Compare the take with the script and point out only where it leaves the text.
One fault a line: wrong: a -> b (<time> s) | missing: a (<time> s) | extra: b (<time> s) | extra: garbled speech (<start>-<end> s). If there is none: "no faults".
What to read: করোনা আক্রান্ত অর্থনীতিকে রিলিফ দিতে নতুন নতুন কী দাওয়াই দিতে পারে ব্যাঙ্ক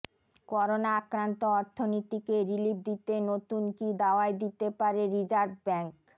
missing: নতুন (3.6 s)
extra: রিজার্ভ (5.1 s)